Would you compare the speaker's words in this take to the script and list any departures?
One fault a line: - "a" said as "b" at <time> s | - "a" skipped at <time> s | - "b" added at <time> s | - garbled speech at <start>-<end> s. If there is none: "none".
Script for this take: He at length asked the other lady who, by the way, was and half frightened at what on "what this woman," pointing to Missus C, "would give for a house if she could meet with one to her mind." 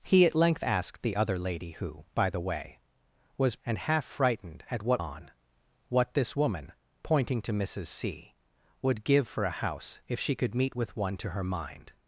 none